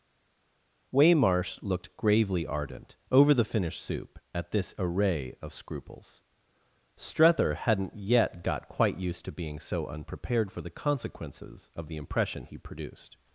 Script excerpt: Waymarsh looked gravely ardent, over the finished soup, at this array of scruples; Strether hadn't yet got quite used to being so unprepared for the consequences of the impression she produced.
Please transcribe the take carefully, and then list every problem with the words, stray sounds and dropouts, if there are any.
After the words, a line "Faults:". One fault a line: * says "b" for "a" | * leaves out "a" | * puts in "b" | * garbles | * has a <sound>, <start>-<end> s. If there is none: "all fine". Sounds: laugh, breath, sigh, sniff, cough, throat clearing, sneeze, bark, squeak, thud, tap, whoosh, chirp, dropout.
Waymarsh looked gravely ardent, over the finished soup, at this array of scruples; Strether hadn't yet got quite used to being so unprepared for the consequences of the impression he produced.
Faults:
* says "he" for "she"